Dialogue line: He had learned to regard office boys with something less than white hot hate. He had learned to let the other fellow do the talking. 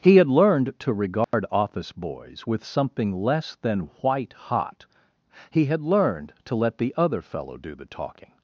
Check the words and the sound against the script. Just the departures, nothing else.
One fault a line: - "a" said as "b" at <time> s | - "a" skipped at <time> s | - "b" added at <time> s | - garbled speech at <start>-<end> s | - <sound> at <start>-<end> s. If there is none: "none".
- dropout at 1.2-1.3 s
- "hate" skipped at 4.9 s